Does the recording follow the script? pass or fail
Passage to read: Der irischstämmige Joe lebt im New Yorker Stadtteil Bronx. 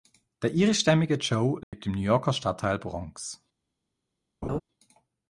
pass